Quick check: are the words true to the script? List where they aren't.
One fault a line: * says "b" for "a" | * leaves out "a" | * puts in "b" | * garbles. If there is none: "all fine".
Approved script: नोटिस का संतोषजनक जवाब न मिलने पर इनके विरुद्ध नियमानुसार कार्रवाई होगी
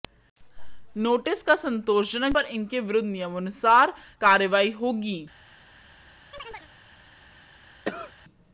* leaves out "जवाब न मिलने"